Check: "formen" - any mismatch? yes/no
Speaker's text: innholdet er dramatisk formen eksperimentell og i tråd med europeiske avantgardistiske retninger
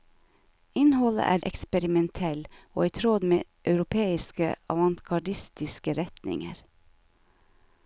yes